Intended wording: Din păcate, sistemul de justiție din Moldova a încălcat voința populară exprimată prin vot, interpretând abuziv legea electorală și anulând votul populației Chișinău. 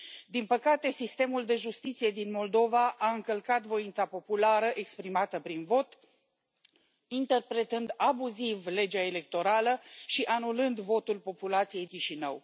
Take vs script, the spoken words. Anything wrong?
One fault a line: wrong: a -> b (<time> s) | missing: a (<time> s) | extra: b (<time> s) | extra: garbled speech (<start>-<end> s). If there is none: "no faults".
no faults